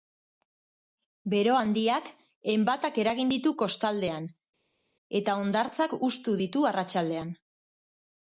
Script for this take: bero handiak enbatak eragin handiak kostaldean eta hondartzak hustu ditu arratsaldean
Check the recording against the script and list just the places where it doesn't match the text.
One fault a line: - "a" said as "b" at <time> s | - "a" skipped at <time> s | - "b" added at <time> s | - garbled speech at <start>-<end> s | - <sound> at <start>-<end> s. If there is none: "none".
- "handiak" said as "ditu" at 3.3 s